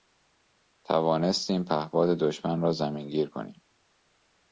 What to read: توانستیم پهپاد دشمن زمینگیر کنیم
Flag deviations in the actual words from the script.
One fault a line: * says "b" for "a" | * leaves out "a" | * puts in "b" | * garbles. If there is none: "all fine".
* puts in "را"